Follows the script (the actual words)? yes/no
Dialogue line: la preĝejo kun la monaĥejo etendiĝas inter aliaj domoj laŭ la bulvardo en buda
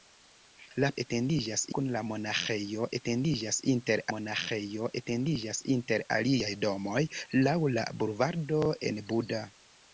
no